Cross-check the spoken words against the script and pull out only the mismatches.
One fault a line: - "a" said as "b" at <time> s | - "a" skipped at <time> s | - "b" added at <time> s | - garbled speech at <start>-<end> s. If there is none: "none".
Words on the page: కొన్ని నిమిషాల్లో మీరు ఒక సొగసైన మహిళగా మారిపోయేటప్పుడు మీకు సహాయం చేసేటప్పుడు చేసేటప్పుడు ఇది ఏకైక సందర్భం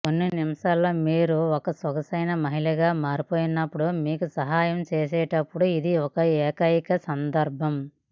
- "చేసేటప్పుడు" skipped at 5.7 s